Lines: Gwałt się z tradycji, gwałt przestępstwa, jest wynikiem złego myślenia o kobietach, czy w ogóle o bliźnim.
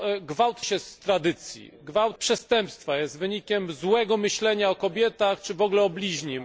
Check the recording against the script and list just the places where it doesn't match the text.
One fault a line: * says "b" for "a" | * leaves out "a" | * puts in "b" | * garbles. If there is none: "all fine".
all fine